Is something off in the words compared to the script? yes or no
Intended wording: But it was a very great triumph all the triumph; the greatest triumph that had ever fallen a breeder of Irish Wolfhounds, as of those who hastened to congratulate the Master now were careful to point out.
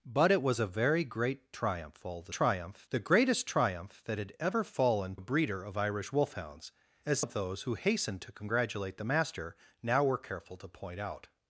no